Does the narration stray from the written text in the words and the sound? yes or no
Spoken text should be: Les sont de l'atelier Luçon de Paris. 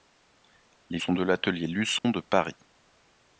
yes